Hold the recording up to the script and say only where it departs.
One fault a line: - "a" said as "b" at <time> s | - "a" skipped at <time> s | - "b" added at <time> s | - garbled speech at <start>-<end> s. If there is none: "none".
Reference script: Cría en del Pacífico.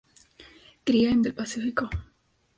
none